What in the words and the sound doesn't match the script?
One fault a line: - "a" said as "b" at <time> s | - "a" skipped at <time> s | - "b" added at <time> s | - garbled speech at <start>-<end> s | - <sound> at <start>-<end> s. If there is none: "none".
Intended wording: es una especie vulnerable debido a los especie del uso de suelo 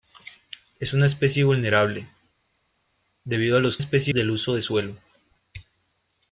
none